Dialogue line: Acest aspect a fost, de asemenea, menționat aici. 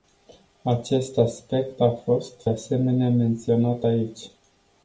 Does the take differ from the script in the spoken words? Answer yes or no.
yes